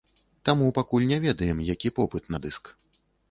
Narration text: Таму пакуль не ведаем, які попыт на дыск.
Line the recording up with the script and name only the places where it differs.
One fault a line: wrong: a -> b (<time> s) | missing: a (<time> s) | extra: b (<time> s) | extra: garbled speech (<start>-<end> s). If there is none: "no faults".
no faults